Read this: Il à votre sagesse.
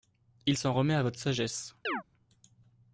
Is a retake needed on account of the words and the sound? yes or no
yes